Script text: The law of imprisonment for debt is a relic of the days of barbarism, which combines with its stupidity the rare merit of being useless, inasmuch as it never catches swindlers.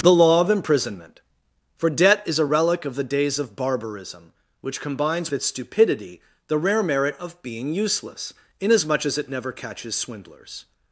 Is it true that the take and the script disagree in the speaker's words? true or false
true